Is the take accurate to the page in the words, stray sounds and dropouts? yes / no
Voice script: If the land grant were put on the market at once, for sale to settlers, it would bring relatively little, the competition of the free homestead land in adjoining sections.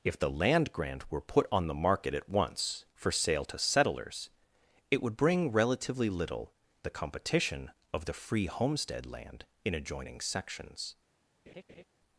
no